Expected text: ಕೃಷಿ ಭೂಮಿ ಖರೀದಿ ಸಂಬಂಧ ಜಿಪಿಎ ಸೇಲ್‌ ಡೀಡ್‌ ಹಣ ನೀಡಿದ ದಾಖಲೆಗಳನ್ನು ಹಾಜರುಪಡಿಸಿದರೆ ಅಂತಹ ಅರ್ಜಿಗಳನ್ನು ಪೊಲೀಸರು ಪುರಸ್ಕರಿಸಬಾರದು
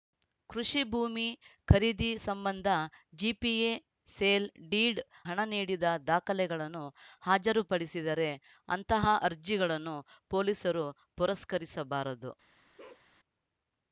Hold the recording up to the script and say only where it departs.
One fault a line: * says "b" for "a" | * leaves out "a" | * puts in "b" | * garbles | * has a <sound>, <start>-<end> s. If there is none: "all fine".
* has a bark, 12.8-13.1 s